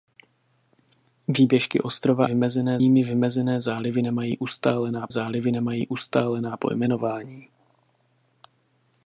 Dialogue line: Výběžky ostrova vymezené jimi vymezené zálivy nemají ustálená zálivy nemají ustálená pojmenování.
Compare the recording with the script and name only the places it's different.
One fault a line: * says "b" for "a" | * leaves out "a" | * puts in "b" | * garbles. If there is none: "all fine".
all fine